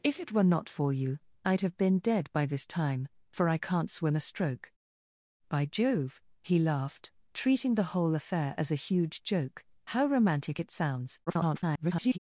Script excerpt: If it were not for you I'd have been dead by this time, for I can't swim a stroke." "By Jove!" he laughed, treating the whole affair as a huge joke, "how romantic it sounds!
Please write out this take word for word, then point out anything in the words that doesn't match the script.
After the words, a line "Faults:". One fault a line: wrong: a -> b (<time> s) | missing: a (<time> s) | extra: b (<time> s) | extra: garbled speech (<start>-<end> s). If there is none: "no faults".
If it were not for you I'd have been dead by this time, for I can't swim a stroke." "By Jove!" he laughed, treating the whole affair as a huge joke, "how romantic it sounds! [garbled]
Faults:
extra: garbled speech (11.3-12.2 s)